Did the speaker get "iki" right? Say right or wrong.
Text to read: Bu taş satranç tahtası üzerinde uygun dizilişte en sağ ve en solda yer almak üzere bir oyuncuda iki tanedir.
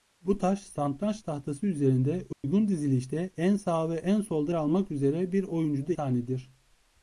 wrong